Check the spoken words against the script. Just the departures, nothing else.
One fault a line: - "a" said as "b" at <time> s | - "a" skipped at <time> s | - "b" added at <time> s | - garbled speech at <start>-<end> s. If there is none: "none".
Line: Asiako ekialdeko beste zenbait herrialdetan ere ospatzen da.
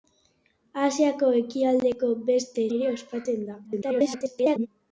- "zenbait herrialdetan" skipped at 2.6 s
- garbled speech at 3.6-4.7 s